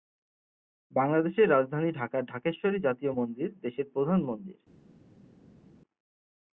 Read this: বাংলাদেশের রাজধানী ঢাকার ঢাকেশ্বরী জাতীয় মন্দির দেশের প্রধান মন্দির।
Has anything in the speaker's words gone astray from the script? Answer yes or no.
no